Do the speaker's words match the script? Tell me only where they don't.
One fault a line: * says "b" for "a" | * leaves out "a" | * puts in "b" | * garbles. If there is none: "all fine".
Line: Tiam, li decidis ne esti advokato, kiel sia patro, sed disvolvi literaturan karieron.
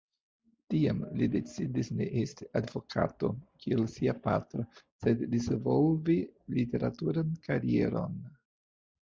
all fine